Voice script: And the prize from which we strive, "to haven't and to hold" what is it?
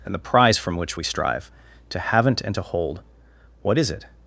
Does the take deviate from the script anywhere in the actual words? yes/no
no